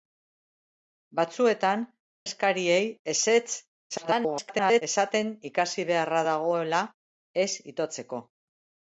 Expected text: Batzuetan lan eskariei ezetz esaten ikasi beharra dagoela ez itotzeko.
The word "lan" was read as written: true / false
false